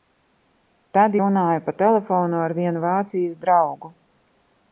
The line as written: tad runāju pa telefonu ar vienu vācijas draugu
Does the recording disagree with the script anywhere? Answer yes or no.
no